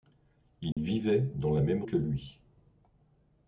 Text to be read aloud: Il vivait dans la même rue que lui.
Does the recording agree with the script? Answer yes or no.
no